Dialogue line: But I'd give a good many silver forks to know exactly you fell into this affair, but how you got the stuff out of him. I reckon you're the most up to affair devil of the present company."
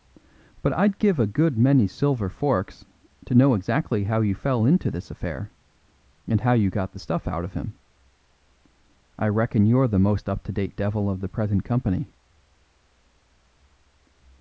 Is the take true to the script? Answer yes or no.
no